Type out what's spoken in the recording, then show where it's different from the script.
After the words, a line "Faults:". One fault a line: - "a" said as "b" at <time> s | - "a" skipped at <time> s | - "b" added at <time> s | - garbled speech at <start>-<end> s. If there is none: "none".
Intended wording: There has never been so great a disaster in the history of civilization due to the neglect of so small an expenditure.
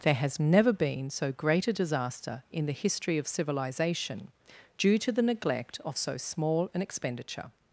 There has never been so great a disaster in the history of civilization due to the neglect of so small an expenditure.
Faults:
none